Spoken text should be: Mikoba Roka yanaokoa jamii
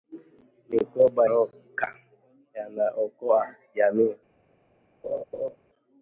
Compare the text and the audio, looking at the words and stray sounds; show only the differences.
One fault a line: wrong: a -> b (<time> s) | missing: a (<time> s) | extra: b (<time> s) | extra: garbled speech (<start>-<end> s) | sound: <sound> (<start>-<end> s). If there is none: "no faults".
sound: laugh (5.0-5.6 s)